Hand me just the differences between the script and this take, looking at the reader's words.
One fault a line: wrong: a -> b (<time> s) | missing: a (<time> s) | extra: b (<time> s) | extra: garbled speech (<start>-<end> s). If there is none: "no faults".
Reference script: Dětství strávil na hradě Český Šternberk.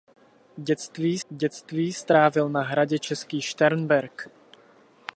extra: dětství (1.3 s)